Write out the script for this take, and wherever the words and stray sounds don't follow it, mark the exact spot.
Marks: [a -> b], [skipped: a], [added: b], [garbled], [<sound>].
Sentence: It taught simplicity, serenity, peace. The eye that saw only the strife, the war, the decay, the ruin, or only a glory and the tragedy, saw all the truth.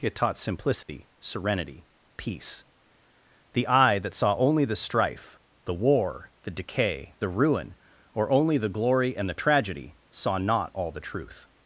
It taught simplicity, [dropout] serenity, peace. The eye that saw only the strife, the war, the decay, the ruin, or only [a -> the] glory and the tragedy, saw [added: not] all the truth.